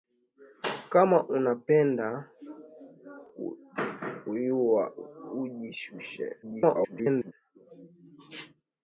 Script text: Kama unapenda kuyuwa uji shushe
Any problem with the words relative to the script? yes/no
yes